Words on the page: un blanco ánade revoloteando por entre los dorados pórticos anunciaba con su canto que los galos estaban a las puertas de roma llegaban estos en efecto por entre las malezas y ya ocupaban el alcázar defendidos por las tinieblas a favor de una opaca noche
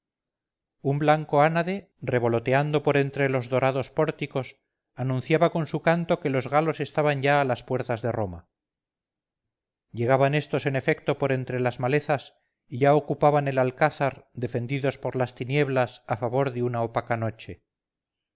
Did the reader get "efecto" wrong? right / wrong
right